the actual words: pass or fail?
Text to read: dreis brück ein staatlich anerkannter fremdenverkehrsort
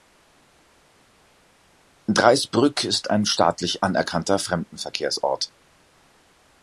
fail